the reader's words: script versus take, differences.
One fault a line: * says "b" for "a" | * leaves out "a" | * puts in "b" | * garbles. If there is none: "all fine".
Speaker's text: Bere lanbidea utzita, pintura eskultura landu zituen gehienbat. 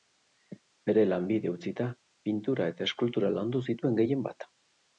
* puts in "eta"